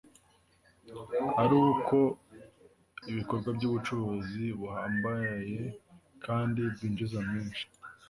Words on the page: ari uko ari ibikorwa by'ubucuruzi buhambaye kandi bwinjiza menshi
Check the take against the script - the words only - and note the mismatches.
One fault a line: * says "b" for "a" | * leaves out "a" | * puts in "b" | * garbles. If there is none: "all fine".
* leaves out "ari"